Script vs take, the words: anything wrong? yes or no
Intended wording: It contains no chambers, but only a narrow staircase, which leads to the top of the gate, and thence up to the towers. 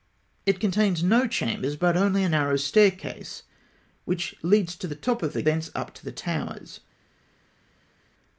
yes